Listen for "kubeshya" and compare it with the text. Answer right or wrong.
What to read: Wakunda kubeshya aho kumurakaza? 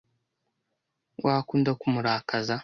wrong